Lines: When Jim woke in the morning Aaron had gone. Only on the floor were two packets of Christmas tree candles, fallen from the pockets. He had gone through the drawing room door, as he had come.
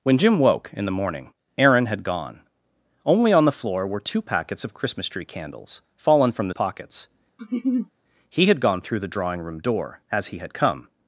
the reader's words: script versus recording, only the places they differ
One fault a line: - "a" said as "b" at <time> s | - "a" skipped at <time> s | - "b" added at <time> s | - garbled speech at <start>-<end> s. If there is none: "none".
none